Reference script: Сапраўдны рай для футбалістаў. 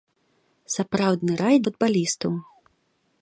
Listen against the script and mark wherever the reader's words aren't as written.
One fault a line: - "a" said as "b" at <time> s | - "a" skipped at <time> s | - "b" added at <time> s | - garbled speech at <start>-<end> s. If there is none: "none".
- "для" skipped at 1.6 s